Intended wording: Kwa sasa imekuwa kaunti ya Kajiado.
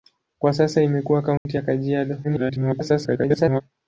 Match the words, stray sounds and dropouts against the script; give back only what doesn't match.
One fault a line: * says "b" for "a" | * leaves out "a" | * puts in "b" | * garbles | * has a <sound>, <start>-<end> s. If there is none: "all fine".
* has a dropout, 1.4-1.5 s
* garbles